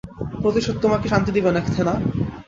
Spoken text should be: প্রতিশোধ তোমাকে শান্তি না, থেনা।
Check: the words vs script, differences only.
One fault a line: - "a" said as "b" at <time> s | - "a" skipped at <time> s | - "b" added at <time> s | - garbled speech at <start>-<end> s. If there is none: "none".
- "দিবে" added at 1.3 s